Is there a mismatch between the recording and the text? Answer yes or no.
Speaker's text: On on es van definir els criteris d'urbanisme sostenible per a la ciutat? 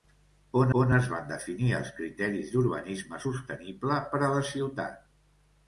no